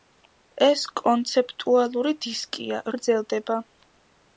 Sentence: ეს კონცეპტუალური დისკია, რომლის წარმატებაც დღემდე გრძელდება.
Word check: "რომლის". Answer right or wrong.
wrong